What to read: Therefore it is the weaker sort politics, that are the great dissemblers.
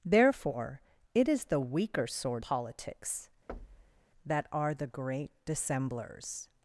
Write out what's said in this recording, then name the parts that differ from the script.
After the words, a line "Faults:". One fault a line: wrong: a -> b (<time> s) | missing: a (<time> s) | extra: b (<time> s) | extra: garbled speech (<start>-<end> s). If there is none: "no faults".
Therefore it is the weaker sort politics, that are the great dissemblers.
Faults:
no faults